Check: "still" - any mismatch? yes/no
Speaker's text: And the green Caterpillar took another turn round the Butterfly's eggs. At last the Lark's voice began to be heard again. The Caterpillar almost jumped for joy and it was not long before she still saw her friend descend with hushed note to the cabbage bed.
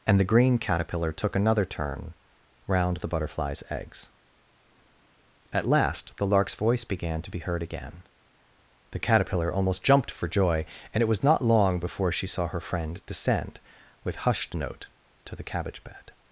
yes